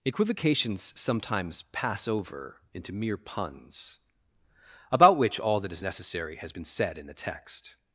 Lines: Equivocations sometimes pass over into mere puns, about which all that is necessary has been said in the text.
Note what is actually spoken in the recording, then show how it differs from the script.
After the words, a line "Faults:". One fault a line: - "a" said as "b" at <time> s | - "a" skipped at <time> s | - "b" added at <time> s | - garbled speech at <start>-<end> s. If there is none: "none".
Equivocations sometimes pass over into mere puns, about which all that is necessary has been said in the text.
Faults:
none